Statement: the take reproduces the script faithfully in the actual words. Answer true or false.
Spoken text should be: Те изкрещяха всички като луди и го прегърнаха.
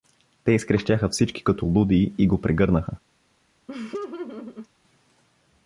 true